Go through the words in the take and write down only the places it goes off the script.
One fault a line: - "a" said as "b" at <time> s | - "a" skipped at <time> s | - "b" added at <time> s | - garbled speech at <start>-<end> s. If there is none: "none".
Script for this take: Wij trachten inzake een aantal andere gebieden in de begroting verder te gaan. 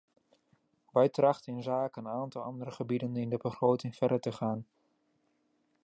none